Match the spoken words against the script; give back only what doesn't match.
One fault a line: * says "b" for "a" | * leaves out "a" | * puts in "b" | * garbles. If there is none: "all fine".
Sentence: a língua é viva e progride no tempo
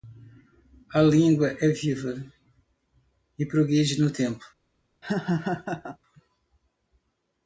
all fine